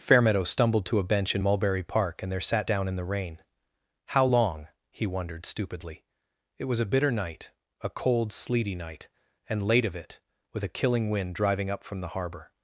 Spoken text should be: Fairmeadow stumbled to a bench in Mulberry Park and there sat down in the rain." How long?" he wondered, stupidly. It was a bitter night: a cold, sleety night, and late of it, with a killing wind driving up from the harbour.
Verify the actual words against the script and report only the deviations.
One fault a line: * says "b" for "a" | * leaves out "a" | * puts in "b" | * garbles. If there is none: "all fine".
all fine